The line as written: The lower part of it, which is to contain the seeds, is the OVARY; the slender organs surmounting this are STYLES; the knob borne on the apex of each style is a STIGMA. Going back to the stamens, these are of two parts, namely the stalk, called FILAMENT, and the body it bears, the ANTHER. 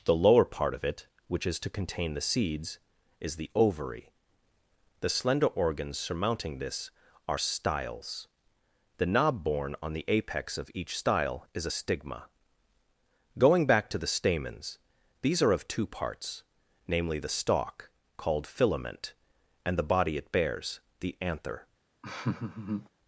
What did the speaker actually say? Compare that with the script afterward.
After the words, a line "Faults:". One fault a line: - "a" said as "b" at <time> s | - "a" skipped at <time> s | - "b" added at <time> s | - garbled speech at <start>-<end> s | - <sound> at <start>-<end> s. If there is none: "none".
The lower part of it, which is to contain the seeds, is the OVARY; the slender organs surmounting this are STYLES; the knob borne on the apex of each style is a STIGMA. Going back to the stamens, these are of two parts, namely the stalk, called FILAMENT, and the body it bears, the ANTHER.
Faults:
- laugh at 22.0-22.9 s